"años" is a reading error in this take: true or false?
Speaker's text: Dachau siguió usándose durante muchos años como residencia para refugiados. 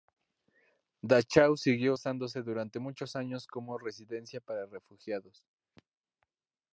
false